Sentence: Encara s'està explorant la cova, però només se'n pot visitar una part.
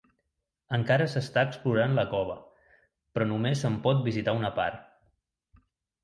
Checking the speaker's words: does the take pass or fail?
pass